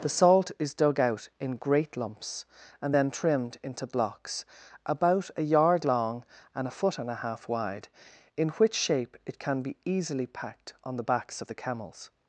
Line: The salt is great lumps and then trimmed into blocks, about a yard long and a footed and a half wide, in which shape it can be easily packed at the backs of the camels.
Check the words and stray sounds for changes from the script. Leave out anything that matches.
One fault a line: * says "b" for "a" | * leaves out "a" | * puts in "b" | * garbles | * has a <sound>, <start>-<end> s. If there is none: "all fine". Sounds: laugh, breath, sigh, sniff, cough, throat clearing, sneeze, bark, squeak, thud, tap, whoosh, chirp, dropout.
* puts in "dug out in"
* says "foot" for "footed"
* says "on" for "at"